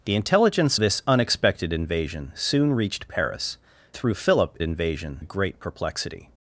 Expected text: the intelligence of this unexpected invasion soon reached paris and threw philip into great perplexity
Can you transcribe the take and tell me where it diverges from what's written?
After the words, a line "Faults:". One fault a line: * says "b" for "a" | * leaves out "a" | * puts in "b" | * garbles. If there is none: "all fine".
the intelligence this unexpected invasion soon reached paris threw philip invasion great perplexity
Faults:
* leaves out "of"
* leaves out "and"
* says "invasion" for "into"